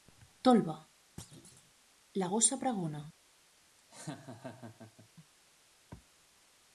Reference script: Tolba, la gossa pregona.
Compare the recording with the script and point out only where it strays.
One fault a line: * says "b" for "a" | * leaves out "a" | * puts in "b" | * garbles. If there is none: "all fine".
all fine